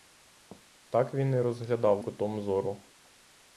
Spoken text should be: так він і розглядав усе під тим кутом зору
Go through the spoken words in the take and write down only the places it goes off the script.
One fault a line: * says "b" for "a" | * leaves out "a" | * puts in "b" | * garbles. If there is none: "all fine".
* leaves out "усе під тим"